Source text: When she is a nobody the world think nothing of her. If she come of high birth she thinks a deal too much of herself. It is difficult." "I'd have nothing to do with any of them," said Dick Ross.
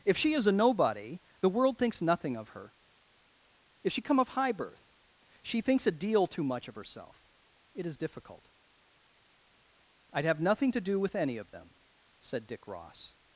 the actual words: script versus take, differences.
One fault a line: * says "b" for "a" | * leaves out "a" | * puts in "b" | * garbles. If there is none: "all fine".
* says "If" for "When"
* says "thinks" for "think"